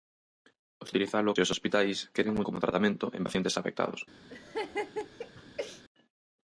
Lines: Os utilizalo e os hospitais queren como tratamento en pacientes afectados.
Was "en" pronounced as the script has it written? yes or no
yes